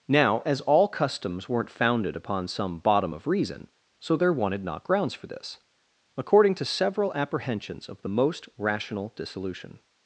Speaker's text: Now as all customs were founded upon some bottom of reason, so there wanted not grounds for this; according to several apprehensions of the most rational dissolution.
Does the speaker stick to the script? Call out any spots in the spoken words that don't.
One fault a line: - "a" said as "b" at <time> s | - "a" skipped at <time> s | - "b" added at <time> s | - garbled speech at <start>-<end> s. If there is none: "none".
- "were" said as "weren't" at 1.5 s